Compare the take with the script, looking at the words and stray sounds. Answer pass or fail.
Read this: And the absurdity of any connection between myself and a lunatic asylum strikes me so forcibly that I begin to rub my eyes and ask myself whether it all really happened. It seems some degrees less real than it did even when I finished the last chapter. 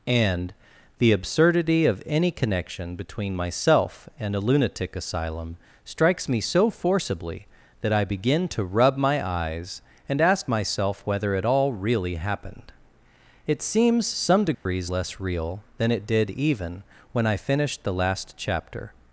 fail